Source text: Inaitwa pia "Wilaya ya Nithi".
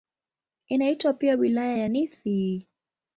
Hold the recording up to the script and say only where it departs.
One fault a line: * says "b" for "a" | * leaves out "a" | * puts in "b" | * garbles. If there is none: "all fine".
all fine